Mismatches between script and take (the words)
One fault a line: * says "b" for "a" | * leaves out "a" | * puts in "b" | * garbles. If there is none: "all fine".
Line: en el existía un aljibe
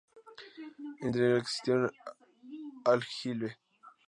* puts in "interior"